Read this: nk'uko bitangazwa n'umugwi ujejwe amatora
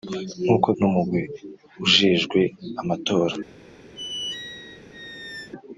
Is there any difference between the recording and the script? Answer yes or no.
yes